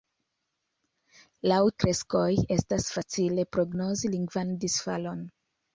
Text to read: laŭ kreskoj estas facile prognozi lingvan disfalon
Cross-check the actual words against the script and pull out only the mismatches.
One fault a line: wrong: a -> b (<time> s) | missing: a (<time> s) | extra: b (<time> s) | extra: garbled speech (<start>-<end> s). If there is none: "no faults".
no faults